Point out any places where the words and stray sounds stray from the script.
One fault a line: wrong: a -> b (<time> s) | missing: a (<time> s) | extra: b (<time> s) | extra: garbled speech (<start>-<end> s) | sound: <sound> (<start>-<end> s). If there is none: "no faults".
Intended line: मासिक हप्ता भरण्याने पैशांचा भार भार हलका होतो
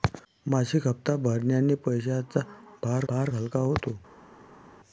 no faults